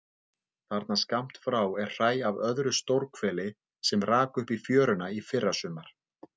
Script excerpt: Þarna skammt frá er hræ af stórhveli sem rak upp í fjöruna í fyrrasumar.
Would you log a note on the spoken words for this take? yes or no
yes